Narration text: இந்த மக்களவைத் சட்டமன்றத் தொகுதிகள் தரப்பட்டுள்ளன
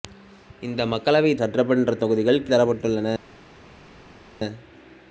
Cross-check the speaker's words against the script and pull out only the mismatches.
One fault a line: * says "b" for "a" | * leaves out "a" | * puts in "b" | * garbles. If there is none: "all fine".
all fine